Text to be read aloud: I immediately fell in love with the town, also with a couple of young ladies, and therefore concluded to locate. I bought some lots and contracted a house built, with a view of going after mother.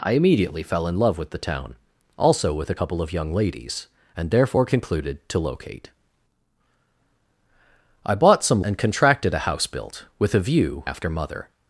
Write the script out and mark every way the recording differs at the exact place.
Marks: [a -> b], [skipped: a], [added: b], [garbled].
I immediately fell in love with the town, also with a couple of young ladies, and therefore concluded to locate. I bought some [skipped: lots] and contracted a house built, with a view [skipped: of going] after mother.